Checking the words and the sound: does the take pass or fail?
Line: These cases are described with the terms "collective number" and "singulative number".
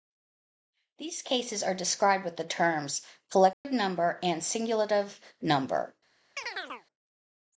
fail